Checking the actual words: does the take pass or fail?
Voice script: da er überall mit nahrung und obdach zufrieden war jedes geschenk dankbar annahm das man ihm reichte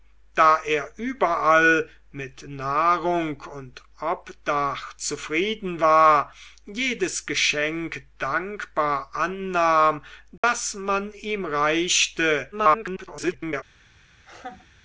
fail